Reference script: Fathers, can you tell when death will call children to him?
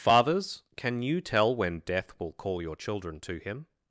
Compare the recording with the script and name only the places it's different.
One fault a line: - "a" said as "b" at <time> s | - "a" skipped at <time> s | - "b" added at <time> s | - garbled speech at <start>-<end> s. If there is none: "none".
- "your" added at 2.6 s